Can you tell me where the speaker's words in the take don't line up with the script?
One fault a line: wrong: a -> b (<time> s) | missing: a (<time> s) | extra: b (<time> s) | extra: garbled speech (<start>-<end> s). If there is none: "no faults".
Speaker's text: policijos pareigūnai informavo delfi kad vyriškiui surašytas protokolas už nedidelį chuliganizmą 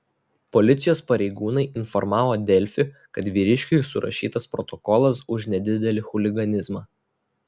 no faults